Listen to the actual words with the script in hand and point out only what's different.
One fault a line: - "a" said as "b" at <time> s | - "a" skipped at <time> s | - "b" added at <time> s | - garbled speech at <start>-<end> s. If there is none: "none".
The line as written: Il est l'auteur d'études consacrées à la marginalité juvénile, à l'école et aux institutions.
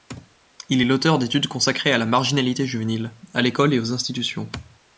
none